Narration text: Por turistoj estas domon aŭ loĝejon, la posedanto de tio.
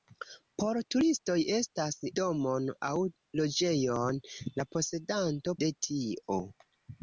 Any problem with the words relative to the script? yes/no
no